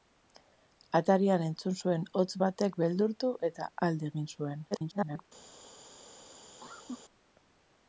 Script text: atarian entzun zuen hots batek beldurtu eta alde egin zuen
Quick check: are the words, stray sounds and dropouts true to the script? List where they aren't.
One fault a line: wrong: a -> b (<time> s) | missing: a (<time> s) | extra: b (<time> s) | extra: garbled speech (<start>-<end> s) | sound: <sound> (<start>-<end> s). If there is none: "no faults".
extra: garbled speech (4.7-5.2 s)
sound: cough (6.6-7.0 s)